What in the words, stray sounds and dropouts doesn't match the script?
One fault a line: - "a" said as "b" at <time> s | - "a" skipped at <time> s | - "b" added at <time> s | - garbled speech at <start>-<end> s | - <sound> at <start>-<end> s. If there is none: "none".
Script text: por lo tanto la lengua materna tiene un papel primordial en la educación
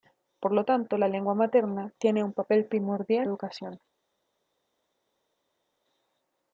- "en la" skipped at 3.3 s